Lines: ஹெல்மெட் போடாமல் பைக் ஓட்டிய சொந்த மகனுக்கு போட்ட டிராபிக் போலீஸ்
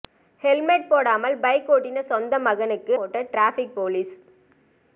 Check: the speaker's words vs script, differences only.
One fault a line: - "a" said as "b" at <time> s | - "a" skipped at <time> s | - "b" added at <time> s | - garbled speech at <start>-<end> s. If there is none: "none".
none